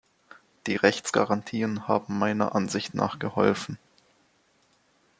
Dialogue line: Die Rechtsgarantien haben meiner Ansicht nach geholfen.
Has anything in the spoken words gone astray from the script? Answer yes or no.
no